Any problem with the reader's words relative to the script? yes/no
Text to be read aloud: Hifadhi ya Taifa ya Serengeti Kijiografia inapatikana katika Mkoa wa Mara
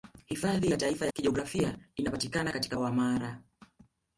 yes